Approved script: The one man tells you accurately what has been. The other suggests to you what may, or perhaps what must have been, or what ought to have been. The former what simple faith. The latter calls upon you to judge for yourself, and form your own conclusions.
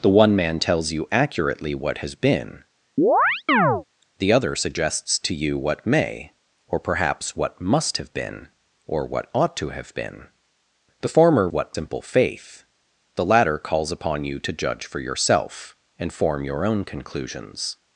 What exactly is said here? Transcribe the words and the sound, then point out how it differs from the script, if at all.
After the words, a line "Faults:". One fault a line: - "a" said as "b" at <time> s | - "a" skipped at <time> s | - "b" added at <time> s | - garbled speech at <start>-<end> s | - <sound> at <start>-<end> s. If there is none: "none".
The one man tells you accurately what has been. The other suggests to you what may, or perhaps what must have been, or what ought to have been. The former what simple faith. The latter calls upon you to judge for yourself, and form your own conclusions.
Faults:
- chirp at 3.0-3.8 s